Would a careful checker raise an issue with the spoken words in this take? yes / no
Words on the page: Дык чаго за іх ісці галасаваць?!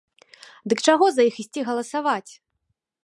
no